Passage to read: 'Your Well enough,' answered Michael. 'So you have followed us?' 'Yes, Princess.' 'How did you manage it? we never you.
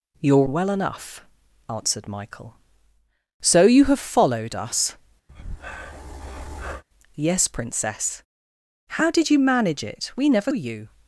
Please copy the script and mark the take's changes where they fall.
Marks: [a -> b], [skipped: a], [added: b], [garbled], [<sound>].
'Your Well enough,' answered Michael. 'So you have followed us?' [breath] 'Yes, Princess.' 'How did you manage it? we never you.